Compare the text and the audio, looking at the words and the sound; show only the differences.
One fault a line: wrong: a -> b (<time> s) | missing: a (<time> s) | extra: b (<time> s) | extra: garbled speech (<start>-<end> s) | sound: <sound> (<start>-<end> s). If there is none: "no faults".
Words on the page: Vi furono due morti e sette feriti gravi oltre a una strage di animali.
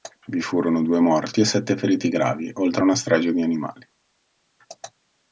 no faults